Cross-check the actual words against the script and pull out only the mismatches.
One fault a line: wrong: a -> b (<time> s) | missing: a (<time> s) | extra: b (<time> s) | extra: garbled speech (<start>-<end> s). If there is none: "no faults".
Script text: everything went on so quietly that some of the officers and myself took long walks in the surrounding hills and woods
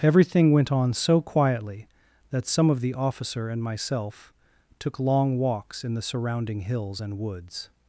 wrong: officers -> officer (2.9 s)